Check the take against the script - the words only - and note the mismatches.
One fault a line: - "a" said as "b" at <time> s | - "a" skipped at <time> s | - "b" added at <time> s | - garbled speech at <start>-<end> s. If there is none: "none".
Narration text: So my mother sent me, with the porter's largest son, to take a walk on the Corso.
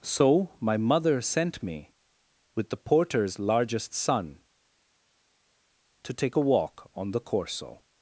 none